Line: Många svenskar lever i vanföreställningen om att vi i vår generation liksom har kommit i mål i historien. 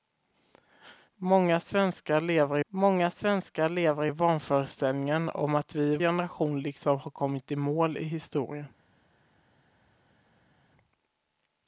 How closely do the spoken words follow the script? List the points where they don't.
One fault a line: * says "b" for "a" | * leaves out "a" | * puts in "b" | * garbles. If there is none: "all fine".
* puts in "många svenskar lever"
* leaves out "vår"